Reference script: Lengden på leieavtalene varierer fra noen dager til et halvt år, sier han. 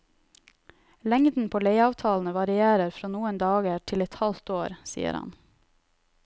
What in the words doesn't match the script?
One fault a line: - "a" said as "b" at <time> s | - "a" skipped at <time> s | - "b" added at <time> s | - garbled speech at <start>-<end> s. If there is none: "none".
none